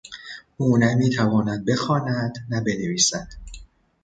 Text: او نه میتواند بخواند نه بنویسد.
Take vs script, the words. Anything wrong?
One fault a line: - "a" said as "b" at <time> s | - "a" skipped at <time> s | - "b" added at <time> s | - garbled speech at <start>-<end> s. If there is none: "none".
none